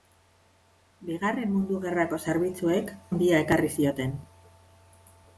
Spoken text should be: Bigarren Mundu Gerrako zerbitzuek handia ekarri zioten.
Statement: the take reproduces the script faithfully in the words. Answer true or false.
true